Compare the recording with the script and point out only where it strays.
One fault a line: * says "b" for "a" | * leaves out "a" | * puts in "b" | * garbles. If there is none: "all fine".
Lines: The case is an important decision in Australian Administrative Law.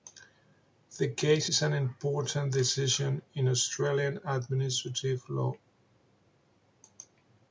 all fine